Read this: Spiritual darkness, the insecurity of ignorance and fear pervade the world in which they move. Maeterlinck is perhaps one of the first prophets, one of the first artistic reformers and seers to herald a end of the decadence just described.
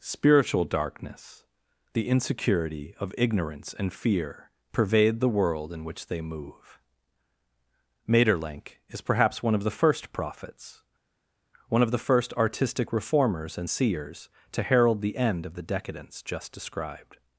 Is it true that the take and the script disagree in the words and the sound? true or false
true